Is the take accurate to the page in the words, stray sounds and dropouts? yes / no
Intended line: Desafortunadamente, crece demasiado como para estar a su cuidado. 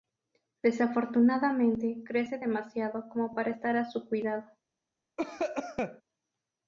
no